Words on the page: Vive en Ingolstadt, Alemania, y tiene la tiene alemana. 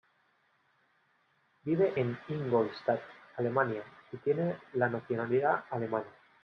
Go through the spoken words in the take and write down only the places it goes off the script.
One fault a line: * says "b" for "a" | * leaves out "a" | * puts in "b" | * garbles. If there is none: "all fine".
* says "nacionalidad" for "tiene"